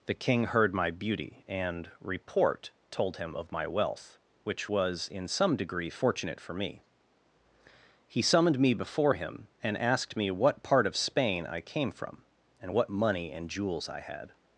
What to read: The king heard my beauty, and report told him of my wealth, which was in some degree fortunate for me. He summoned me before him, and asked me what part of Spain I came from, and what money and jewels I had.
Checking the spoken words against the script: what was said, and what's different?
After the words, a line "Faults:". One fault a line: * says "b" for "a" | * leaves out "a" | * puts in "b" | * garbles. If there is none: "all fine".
The king heard my beauty, and report told him of my wealth, which was in some degree fortunate for me. He summoned me before him, and asked me what part of Spain I came from, and what money and jewels I had.
Faults:
all fine